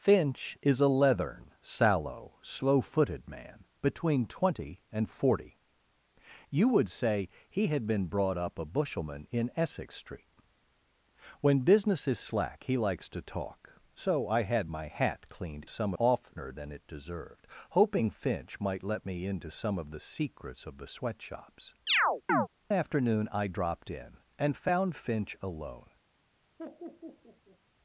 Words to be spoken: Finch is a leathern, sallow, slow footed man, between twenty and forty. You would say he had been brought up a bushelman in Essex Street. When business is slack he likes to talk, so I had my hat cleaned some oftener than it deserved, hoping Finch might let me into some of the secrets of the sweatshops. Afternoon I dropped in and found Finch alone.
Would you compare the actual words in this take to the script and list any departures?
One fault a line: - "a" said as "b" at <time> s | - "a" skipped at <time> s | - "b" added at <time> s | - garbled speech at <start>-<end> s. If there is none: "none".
none